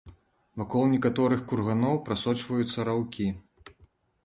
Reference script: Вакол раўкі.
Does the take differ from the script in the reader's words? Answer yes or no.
yes